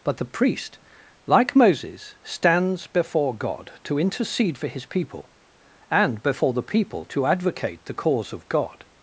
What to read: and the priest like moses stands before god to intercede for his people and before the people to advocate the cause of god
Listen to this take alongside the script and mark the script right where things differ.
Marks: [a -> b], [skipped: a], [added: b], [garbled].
[and -> but] the priest like moses stands before god to intercede for his people and before the people to advocate the cause of god